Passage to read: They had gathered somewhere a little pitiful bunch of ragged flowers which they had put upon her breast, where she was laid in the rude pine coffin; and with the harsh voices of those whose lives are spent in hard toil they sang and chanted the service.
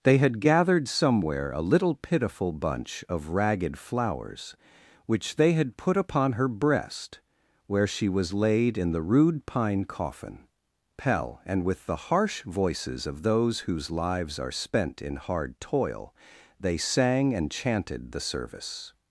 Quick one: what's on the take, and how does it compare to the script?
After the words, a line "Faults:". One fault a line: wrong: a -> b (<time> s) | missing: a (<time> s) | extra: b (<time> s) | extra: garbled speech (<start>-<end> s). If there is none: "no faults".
They had gathered somewhere a little pitiful bunch of ragged flowers which they had put upon her breast, where she was laid in the rude pine coffin; pell and with the harsh voices of those whose lives are spent in hard toil they sang and chanted the service.
Faults:
extra: pell (11.0 s)